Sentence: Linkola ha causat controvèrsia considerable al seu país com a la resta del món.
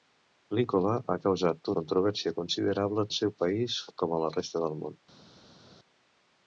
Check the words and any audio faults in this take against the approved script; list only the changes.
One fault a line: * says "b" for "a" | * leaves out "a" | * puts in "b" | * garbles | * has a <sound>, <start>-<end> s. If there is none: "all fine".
all fine